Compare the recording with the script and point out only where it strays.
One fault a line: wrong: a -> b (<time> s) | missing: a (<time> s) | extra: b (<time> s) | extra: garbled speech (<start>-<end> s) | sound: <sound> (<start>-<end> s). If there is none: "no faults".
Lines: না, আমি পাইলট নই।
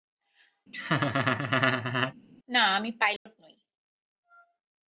sound: laugh (0.7-2.1 s)
sound: dropout (3.2-3.3 s)